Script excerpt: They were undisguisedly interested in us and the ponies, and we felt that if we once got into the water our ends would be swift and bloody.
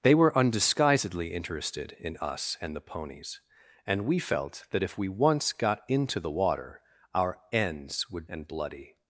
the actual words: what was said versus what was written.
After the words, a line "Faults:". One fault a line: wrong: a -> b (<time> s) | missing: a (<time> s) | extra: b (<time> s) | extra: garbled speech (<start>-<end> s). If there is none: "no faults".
They were undisguisedly interested in us and the ponies, and we felt that if we once got into the water our ends would and bloody.
Faults:
missing: be swift (8.3 s)